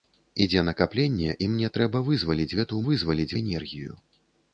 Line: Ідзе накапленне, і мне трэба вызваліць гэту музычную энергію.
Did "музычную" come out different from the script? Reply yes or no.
yes